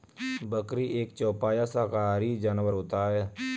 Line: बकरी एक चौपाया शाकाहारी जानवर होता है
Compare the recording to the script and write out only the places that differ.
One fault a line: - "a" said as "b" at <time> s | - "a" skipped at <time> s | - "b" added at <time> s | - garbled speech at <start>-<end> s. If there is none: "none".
none